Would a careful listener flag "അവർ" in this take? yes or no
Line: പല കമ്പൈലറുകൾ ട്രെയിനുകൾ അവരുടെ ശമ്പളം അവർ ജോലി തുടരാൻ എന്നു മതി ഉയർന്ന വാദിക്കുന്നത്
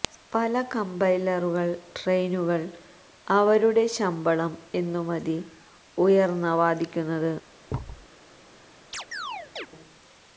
yes